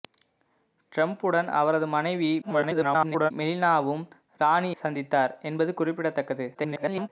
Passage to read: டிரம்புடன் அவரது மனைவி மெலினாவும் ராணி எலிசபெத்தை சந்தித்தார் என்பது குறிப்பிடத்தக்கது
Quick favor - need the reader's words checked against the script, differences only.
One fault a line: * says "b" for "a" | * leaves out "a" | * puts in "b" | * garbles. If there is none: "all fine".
* garbles
* leaves out "எலிசபெத்தை"
* garbles